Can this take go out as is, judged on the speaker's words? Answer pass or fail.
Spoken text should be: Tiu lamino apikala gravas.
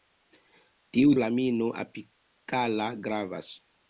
pass